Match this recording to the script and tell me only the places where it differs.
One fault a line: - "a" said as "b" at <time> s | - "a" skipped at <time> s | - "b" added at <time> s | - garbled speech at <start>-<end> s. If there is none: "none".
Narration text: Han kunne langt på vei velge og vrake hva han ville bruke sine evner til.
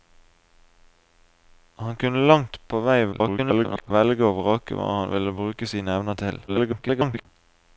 - garbled speech at 3.1-3.9 s
- garbled speech at 6.5-7.3 s